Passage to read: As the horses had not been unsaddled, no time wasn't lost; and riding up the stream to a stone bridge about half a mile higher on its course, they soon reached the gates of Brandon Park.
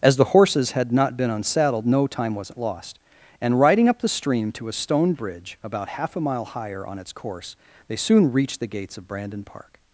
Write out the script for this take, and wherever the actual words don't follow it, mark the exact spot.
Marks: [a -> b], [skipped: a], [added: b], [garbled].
As the horses had not been unsaddled, no time wasn't lost; and riding up the stream to a stone bridge about half a mile higher on its course, they soon reached the gates of Brandon Park.